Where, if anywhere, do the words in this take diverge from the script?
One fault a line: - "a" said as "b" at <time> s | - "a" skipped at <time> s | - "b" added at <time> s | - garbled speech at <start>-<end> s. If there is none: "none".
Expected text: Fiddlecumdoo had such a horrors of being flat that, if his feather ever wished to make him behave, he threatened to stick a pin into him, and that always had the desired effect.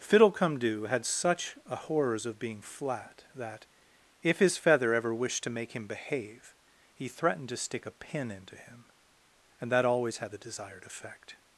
none